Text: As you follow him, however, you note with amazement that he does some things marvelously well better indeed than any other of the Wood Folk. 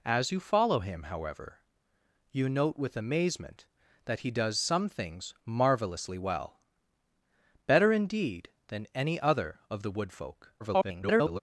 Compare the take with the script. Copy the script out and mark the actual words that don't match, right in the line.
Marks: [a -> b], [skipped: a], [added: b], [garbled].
As you follow him, however, you note with amazement that he does some things marvelously well better indeed than any other of the Wood Folk. [garbled]